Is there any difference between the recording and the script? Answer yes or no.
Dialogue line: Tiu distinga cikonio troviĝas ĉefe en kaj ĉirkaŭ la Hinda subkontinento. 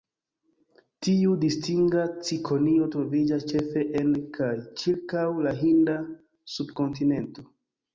no